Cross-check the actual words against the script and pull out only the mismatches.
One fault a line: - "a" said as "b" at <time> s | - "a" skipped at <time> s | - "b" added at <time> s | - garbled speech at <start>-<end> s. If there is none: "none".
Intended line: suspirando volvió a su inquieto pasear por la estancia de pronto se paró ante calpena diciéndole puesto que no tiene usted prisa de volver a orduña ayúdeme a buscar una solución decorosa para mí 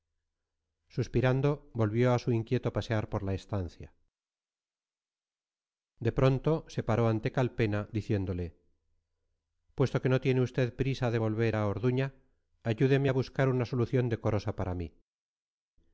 none